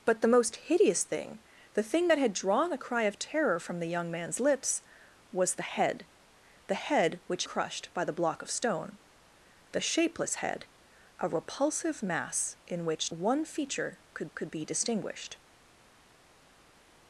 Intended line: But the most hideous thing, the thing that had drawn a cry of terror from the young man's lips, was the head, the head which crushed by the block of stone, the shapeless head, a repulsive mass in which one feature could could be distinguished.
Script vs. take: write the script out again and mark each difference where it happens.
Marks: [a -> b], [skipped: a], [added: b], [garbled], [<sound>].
But the most hideous thing, the thing that had drawn a cry of terror from the young man's lips, was the head, the head which crushed by the block of stone, the shapeless head, a repulsive mass in which one feature could could be distinguished.